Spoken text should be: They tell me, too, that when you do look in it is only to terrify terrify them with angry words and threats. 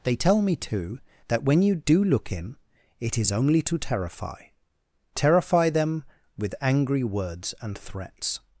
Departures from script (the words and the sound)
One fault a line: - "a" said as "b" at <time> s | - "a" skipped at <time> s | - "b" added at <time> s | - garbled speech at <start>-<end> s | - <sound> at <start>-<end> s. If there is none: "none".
none